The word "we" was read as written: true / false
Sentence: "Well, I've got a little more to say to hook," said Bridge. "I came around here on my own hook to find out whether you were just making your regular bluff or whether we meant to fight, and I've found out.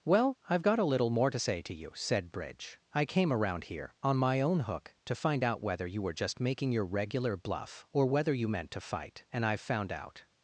false